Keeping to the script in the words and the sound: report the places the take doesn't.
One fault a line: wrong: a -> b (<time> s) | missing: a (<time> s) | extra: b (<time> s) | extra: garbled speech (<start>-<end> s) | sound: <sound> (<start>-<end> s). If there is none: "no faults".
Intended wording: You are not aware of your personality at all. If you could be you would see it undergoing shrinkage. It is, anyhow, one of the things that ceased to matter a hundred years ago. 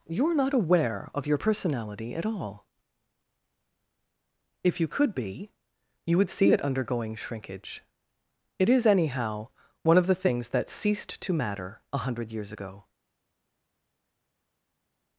no faults